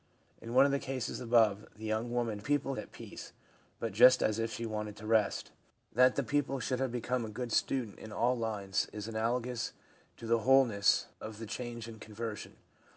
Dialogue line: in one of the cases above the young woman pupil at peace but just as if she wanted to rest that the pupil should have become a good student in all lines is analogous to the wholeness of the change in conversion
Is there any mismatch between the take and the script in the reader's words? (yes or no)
no